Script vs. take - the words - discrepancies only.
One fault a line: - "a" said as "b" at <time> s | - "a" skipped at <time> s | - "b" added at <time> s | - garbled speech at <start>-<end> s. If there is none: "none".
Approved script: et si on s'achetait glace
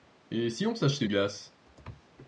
none